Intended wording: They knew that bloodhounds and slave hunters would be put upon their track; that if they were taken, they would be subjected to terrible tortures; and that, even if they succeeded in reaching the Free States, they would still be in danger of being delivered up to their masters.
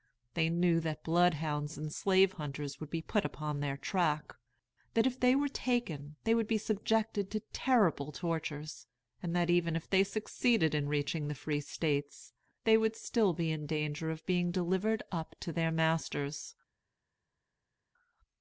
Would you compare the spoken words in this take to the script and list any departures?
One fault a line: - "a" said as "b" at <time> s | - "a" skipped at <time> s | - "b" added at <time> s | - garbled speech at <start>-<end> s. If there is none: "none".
none